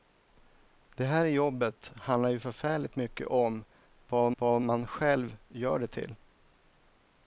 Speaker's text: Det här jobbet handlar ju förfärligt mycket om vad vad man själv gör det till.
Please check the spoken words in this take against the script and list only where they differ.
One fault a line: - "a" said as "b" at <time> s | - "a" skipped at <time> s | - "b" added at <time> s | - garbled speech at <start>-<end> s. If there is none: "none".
none